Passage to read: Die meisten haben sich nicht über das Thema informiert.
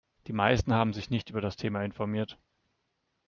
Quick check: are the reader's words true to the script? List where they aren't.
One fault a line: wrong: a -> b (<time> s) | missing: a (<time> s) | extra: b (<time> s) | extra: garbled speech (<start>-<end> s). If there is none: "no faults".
no faults